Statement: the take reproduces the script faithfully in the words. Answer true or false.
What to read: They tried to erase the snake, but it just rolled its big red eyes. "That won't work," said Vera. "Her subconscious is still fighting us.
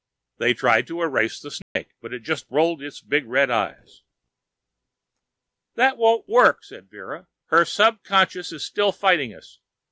true